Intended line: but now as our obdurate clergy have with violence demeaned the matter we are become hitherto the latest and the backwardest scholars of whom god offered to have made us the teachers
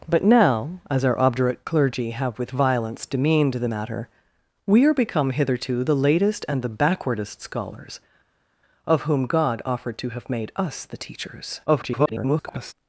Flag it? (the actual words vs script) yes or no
yes